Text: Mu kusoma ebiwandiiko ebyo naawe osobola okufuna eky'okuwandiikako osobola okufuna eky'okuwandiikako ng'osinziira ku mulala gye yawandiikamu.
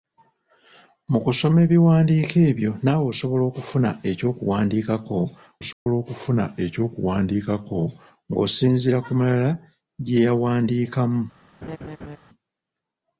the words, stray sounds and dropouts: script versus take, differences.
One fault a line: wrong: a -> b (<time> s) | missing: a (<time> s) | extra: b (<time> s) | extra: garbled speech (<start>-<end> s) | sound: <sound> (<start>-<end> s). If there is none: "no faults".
sound: dropout (5.7-5.9 s)
sound: laugh (11.6-12.2 s)